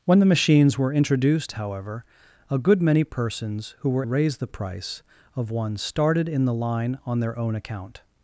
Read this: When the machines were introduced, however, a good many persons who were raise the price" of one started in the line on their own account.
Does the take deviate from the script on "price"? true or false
false